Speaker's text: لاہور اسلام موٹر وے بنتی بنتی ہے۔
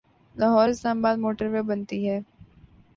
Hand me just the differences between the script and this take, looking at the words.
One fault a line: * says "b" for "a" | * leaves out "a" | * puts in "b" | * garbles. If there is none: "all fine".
* puts in "آباد"
* leaves out "بنتی"